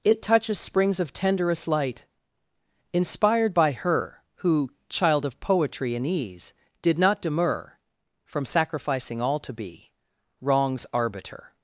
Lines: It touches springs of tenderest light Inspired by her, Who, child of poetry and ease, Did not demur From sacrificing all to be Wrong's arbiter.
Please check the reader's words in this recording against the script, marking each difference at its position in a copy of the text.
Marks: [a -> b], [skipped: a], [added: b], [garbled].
It touches springs of tenderest light Inspired by her, Who, child of poetry and ease, Did not demur From sacrificing all to be Wrong's arbiter.